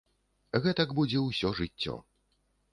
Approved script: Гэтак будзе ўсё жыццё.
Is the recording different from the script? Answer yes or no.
no